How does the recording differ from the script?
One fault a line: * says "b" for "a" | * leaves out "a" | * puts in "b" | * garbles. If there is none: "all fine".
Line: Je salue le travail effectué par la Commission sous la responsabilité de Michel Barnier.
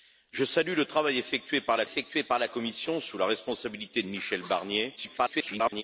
* puts in "effectué par la"
* garbles